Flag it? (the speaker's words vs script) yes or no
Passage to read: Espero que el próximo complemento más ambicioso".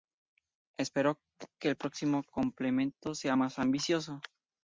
yes